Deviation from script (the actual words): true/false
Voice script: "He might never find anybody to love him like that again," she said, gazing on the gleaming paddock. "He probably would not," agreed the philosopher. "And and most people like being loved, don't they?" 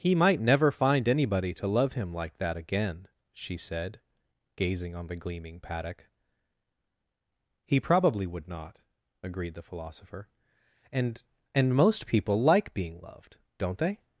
false